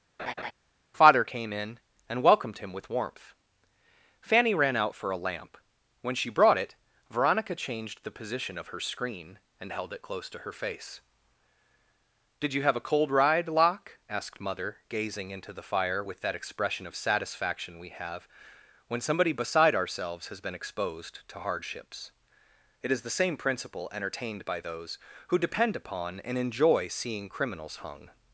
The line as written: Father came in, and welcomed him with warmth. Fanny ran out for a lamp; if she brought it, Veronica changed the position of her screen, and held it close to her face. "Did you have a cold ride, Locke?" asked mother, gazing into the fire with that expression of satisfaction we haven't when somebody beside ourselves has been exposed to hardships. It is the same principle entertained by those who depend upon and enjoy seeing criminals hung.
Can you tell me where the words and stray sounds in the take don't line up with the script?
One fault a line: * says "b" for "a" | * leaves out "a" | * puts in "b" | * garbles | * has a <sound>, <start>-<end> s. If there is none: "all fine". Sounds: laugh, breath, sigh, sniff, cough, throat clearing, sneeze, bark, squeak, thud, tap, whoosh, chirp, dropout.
* has a laugh, 0.2-0.5 s
* says "when" for "if"
* says "have" for "haven't"